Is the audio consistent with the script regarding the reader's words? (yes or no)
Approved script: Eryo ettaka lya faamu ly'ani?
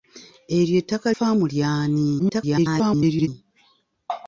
no